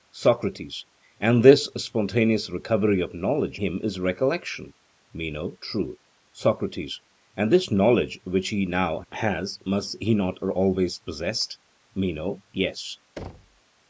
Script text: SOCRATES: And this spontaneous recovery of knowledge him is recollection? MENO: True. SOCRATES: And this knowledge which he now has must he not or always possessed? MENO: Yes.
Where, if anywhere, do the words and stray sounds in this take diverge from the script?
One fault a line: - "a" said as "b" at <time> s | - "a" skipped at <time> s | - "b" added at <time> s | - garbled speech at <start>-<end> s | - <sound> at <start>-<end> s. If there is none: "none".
- thud at 13.2-13.6 s